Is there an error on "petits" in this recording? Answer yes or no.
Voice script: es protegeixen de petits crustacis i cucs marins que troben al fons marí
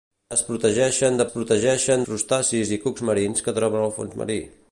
yes